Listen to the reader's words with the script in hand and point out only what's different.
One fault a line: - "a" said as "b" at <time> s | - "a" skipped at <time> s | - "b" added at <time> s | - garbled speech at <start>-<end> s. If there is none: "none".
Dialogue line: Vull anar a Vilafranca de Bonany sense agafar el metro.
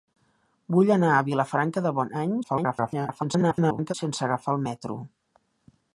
- garbled speech at 2.4-3.9 s